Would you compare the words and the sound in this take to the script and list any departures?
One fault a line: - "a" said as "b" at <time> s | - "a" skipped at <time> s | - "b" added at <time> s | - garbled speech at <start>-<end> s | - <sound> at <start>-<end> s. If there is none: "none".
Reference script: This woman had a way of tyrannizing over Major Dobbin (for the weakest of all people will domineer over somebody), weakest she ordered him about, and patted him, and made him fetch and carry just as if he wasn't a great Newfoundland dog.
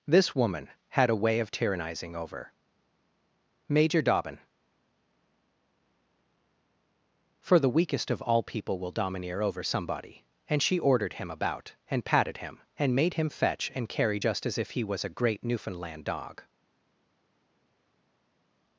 - "weakest" said as "and" at 10.5 s
- "wasn't" said as "was" at 14.8 s